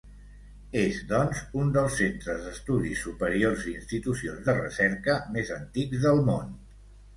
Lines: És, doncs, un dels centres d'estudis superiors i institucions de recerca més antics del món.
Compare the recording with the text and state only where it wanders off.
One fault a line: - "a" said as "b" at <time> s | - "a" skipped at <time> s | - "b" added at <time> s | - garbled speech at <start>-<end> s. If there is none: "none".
none